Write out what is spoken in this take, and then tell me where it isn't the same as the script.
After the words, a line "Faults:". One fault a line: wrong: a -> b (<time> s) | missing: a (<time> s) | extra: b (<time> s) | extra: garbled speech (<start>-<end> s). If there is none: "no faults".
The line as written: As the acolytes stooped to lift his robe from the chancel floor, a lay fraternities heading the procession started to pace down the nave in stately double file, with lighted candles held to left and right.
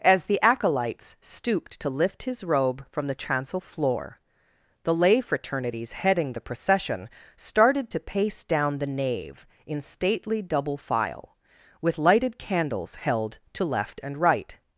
As the acolytes stooped to lift his robe from the chancel floor, the lay fraternities heading the procession started to pace down the nave in stately double file, with lighted candles held to left and right.
Faults:
wrong: a -> the (4.8 s)